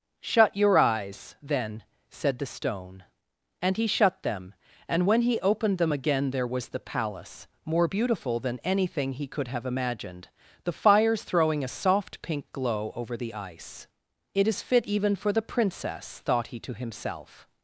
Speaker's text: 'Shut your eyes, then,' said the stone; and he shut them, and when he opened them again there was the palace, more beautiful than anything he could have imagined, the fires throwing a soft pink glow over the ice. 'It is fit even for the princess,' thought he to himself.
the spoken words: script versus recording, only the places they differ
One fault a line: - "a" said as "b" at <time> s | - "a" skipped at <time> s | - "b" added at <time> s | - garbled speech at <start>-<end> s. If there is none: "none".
none